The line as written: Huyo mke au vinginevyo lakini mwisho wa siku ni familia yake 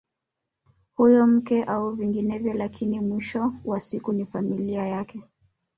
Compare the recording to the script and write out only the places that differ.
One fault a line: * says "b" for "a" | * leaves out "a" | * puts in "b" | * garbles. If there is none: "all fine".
all fine